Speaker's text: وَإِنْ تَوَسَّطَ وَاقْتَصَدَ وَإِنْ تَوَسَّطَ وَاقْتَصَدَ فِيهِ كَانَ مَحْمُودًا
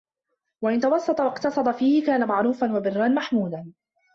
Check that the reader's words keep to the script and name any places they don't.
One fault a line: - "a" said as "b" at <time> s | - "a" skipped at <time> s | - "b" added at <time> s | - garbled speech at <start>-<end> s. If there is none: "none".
- "وَإِنْ تَوَسَّطَ وَاقْتَصَدَ فِيهِ كَانَ" said as "فِيهِ كَانَ مَعْرُوفًا وَبِرًّا" at 1.7 s